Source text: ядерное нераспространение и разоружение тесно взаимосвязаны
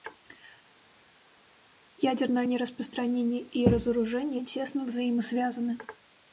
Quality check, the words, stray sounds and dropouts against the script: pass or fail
pass